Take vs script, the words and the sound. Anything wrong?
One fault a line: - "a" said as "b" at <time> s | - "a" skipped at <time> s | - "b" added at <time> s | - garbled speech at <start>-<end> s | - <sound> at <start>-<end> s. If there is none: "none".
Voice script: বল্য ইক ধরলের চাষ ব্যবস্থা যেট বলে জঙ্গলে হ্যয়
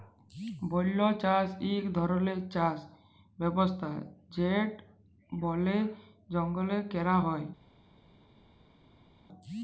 - "চাষ" added at 1.2 s
- "ক্যরা" added at 6.9 s